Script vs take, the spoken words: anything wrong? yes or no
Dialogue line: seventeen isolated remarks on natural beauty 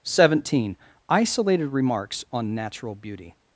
no